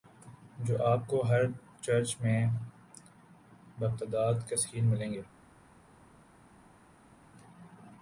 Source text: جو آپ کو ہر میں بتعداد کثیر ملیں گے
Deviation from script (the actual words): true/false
true